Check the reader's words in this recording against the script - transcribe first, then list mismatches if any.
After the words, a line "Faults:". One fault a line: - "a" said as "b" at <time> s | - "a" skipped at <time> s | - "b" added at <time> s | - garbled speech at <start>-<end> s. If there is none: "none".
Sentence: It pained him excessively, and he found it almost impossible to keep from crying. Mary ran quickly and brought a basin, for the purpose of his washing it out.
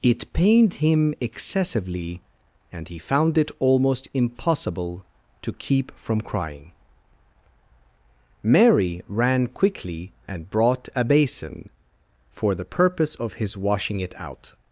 It pained him excessively, and he found it almost impossible to keep from crying. Mary ran quickly and brought a basin, for the purpose of his washing it out.
Faults:
none